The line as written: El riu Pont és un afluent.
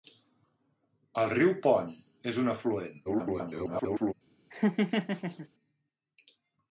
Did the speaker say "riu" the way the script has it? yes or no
yes